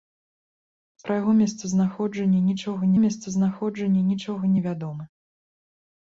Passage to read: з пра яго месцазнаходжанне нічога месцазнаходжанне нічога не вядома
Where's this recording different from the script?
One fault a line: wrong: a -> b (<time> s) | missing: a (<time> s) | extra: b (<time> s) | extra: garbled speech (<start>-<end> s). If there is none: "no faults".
no faults